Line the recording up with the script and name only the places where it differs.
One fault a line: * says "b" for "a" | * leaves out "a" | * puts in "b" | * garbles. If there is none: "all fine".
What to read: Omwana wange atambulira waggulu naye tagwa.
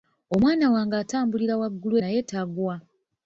all fine